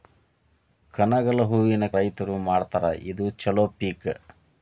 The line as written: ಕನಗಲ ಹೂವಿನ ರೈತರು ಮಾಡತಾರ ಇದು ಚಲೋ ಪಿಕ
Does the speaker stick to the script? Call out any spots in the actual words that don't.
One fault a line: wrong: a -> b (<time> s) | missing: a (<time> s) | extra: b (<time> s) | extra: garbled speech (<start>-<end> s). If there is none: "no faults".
no faults